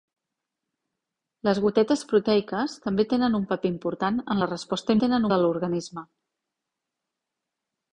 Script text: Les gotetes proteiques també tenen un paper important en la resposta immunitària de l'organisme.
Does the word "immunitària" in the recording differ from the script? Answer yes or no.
yes